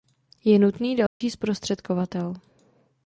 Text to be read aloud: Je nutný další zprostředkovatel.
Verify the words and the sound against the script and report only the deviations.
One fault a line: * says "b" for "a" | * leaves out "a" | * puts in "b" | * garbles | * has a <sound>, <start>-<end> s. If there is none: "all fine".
* has a dropout, 1.1-1.2 s